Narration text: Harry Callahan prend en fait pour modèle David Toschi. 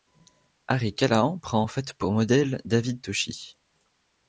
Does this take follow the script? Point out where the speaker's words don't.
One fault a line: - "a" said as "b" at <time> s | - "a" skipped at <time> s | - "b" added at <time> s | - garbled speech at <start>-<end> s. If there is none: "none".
none